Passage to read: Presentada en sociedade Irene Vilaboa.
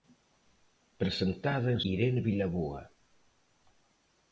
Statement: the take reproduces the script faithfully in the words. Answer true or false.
false